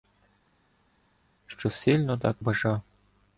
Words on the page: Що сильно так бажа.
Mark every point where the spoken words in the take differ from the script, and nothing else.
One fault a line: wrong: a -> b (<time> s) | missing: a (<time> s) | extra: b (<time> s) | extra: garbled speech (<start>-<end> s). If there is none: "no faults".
no faults